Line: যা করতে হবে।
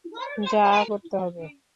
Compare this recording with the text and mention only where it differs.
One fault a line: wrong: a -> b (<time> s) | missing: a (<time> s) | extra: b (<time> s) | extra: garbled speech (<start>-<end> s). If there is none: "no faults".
no faults